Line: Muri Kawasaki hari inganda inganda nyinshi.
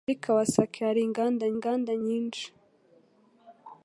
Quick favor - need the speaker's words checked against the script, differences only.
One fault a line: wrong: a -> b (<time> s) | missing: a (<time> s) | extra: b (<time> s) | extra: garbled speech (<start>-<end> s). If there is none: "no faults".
no faults